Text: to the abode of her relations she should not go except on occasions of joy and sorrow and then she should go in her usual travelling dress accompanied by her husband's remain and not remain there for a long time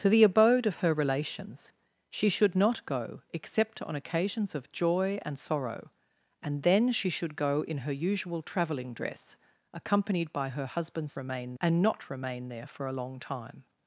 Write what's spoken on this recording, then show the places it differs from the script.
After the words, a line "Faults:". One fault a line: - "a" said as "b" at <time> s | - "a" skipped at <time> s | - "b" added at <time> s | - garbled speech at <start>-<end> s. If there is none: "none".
to the abode of her relations she should not go except on occasions of joy and sorrow and then she should go in her usual travelling dress accompanied by her husband's remain and not remain there for a long time
Faults:
none